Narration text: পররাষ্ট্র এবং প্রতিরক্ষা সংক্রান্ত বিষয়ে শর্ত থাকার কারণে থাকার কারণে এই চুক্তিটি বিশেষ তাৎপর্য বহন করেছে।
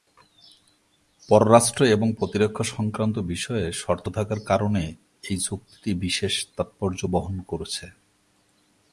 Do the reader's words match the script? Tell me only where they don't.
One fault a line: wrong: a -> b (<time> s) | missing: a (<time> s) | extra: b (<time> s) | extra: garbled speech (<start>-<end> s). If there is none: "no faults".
missing: থাকার কারণে (4.8 s)